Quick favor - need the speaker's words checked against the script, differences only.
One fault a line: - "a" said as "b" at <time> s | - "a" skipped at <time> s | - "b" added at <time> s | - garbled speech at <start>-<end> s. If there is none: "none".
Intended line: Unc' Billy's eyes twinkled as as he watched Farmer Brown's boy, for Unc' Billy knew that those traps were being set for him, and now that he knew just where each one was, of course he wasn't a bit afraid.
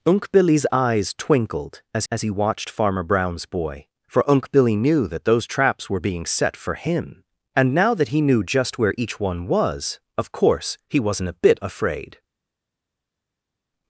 none